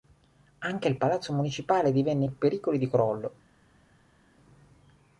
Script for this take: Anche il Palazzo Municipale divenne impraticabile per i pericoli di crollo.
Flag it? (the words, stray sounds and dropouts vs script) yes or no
yes